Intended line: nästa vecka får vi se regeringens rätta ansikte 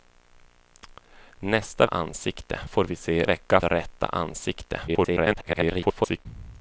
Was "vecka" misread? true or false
true